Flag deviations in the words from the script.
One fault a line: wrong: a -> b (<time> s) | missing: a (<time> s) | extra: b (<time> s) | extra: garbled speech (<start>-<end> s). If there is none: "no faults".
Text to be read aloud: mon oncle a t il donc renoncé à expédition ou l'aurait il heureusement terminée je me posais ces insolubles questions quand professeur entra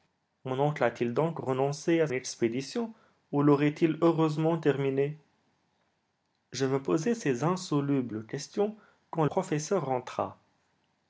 no faults